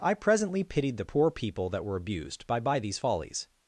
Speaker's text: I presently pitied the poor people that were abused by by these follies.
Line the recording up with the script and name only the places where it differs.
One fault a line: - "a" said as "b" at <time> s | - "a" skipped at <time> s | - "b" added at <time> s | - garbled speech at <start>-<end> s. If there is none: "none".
none